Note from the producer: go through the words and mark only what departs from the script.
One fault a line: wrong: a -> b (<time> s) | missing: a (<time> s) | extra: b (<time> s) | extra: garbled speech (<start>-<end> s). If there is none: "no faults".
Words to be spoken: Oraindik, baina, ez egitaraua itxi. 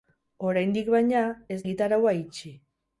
no faults